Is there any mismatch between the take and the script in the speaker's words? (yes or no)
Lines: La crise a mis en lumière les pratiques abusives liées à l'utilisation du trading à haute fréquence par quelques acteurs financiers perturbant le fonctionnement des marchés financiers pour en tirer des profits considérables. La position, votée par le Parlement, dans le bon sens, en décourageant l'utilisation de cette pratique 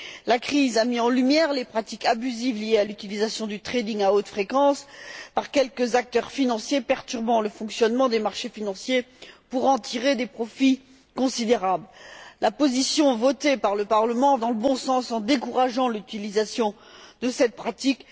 no